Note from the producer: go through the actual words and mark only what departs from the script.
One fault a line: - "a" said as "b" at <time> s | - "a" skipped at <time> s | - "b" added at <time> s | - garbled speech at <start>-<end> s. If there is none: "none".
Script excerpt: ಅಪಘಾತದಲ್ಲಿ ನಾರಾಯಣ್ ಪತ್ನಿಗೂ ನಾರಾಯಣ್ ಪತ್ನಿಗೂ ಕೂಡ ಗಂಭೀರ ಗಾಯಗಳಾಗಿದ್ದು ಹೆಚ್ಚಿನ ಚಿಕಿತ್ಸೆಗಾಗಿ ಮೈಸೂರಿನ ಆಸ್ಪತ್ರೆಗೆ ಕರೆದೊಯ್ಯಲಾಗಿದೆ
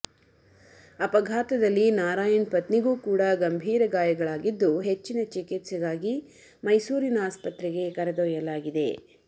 - "ನಾರಾಯಣ್ ಪತ್ನಿಗೂ" skipped at 2.9 s